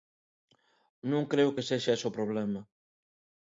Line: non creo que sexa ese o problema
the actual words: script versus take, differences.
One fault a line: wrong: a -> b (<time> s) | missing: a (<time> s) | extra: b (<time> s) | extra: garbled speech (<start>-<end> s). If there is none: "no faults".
no faults